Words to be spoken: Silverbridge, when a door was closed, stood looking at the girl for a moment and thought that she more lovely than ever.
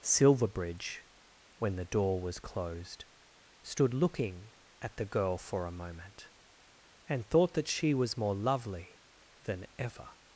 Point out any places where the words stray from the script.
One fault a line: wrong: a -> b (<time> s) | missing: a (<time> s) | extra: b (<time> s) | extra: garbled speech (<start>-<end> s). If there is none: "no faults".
wrong: a -> the (1.8 s)
extra: was (7.9 s)